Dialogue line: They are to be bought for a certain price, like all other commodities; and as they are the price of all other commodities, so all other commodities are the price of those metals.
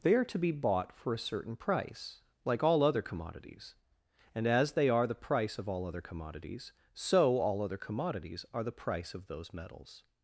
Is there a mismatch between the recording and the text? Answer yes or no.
no